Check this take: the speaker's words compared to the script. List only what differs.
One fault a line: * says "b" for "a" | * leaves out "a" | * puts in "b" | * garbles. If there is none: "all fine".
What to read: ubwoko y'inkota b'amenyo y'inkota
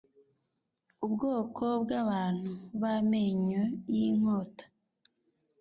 * says "bw'abantu" for "y'inkota"